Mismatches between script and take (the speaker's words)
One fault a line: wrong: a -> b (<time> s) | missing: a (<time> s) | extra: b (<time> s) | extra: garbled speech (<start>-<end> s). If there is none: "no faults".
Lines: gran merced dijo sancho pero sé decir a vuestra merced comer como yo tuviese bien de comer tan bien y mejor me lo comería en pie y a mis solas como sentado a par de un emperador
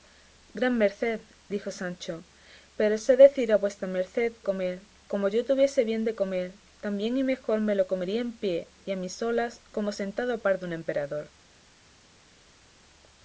no faults